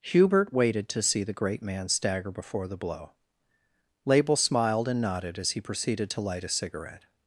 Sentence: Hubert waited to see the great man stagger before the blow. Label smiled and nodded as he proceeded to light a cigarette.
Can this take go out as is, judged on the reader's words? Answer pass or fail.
pass